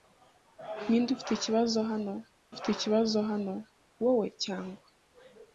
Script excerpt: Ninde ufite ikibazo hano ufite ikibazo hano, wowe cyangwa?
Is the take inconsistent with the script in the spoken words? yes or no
no